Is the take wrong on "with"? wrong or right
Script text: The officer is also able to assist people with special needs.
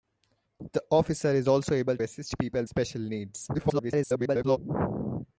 wrong